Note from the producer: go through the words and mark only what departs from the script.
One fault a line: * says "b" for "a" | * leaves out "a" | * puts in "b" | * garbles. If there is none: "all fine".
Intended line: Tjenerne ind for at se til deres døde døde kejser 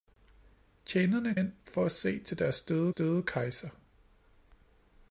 all fine